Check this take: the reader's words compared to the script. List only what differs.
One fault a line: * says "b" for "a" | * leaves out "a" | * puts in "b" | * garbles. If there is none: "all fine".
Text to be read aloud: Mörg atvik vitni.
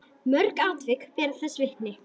* puts in "bera þess"